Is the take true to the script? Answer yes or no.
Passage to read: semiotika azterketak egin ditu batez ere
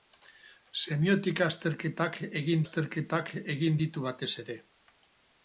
no